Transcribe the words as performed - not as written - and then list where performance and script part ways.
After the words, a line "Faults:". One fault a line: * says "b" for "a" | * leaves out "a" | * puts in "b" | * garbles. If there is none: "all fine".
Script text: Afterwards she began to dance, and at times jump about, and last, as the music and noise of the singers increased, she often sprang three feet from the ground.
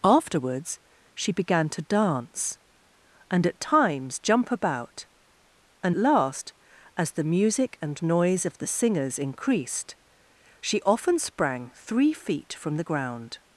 Afterwards she began to dance, and at times jump about, and last, as the music and noise of the singers increased, she often sprang three feet from the ground.
Faults:
all fine